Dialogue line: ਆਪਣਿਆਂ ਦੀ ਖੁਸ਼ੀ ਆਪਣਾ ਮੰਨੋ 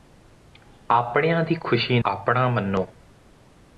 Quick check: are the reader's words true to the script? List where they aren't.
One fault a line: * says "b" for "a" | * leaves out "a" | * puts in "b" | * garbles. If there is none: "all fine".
all fine